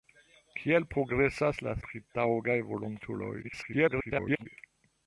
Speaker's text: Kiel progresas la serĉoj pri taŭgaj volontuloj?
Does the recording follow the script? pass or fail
fail